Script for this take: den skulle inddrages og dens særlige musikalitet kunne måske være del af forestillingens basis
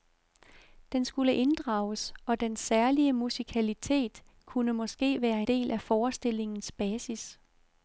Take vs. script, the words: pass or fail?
pass